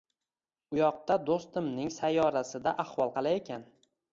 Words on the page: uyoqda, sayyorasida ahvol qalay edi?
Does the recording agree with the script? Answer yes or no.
no